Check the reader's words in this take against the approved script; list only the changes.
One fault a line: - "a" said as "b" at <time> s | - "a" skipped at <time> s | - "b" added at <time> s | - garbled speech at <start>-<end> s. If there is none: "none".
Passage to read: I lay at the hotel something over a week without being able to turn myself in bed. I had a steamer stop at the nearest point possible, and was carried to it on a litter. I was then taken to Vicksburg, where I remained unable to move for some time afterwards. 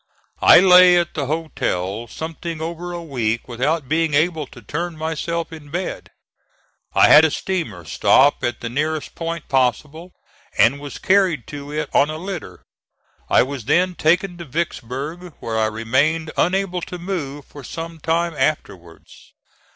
none